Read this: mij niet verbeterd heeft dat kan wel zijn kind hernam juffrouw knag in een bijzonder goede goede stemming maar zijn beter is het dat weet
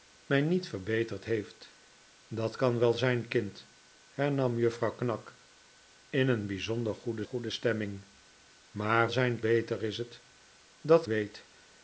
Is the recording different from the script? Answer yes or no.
no